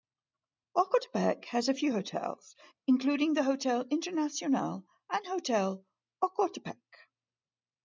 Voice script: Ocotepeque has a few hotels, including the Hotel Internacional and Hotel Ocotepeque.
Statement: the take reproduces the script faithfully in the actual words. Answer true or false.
true